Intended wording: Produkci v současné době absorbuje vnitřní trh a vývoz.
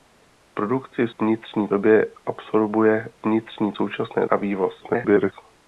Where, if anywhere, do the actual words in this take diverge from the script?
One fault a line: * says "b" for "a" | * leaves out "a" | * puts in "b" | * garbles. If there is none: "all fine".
* says "vnitřní" for "současné"
* says "současné" for "trh"
* garbles